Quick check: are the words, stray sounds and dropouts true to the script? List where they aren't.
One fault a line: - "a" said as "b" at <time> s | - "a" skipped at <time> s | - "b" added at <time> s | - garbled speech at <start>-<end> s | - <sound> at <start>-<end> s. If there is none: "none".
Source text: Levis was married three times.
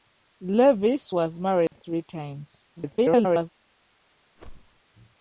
- dropout at 1.7-1.7 s
- garbled speech at 2.8-3.5 s
- whoosh at 4.4-4.8 s